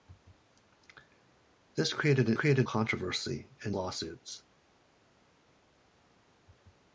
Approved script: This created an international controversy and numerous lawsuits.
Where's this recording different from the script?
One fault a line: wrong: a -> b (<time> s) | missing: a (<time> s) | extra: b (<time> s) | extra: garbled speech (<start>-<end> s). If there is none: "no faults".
wrong: international -> created (2.3 s)
missing: numerous (3.8 s)